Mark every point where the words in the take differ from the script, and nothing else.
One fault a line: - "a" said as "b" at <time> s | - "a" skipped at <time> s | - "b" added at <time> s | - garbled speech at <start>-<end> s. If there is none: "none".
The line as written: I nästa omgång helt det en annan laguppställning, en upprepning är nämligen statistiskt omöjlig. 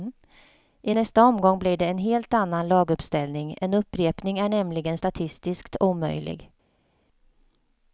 - "helt" said as "blir" at 1.6 s
- "helt" added at 2.0 s